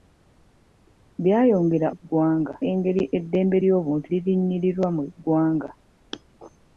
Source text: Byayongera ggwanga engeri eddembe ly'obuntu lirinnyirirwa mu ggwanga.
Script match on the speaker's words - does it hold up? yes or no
yes